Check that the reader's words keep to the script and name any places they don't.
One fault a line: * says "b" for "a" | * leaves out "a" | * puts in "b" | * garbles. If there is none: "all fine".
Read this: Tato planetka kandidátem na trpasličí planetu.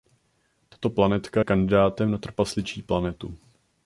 all fine